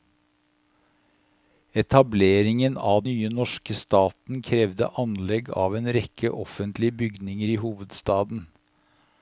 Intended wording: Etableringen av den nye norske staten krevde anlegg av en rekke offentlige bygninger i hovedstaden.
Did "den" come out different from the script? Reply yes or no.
yes